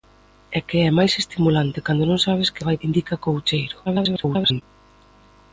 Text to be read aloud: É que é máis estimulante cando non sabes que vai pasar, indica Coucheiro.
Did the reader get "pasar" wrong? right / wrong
wrong